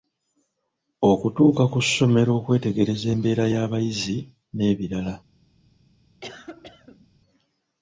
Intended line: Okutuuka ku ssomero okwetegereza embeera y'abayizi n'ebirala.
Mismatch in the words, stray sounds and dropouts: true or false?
true